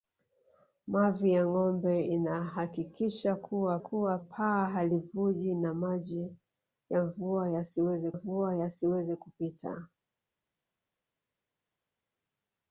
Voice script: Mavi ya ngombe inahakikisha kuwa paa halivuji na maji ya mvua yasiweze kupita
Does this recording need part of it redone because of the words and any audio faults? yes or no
yes